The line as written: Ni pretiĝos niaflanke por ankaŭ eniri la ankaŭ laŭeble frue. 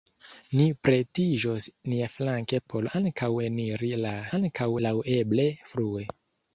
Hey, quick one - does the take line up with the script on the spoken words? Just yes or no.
yes